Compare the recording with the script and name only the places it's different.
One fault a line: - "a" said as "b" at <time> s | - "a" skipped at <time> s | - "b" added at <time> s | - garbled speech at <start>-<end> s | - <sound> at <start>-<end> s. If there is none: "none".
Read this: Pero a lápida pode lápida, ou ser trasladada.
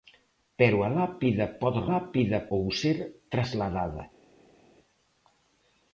none